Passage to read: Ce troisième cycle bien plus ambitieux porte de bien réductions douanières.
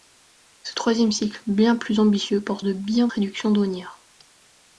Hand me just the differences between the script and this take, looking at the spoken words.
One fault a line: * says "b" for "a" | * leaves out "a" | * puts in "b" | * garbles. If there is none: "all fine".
all fine